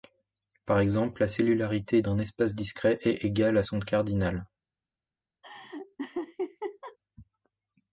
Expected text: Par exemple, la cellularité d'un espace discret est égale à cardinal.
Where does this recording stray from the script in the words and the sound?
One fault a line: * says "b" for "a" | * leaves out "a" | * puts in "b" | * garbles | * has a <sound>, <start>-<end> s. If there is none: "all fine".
* puts in "son"
* has a laugh, 5.4-7.0 s